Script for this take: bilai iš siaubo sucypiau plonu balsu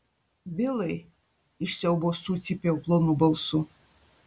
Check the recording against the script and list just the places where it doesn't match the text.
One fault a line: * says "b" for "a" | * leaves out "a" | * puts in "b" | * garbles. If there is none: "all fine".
all fine